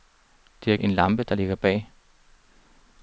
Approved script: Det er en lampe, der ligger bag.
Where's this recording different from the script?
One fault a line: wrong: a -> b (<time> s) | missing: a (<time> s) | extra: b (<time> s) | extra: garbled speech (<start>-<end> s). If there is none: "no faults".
no faults